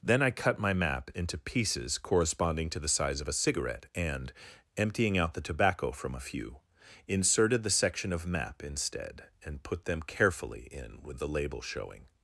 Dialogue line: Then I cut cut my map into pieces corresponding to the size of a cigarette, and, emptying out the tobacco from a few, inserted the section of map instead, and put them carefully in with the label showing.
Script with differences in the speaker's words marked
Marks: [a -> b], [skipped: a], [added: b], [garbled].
Then I cut [skipped: cut] my map into pieces corresponding to the size of a cigarette, and, emptying out the tobacco from a few, inserted the section of map instead, and put them carefully in with the label showing.